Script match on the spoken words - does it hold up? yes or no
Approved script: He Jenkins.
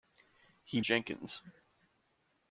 yes